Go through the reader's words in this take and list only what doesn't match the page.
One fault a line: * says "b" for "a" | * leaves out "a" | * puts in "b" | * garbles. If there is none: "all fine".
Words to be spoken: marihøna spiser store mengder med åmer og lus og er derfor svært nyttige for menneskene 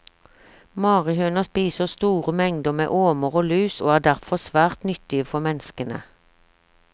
all fine